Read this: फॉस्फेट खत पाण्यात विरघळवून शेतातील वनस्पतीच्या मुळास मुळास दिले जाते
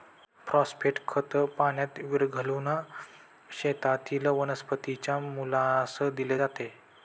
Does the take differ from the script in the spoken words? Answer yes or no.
yes